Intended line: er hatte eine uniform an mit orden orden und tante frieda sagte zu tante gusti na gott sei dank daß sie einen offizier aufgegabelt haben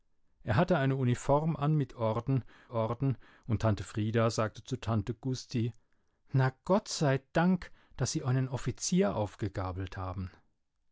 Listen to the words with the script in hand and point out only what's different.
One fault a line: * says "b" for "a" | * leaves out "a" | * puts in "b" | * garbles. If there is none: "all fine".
all fine